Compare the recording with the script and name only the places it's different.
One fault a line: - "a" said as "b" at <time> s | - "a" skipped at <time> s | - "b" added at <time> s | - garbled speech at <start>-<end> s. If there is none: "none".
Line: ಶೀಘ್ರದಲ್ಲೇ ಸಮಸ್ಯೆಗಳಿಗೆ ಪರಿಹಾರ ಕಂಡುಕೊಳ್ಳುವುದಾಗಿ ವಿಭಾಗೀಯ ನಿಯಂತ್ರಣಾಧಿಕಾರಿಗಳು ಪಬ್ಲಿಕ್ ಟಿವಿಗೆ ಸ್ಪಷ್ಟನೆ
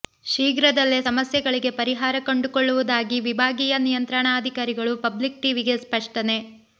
none